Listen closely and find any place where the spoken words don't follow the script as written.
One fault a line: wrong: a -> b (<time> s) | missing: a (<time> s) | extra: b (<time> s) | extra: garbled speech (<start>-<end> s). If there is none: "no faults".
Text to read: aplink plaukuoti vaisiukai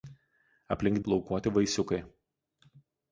no faults